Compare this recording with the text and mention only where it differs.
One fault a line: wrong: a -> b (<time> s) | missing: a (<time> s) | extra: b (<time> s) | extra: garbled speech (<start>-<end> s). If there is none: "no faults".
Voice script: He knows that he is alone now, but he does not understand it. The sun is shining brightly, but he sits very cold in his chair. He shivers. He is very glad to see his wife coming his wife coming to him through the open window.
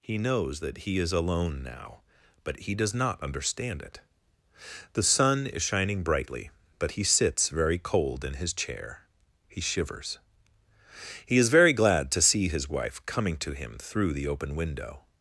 missing: his wife coming (13.4 s)